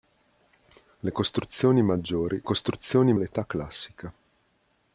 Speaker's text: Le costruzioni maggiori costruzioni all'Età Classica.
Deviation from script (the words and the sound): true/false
false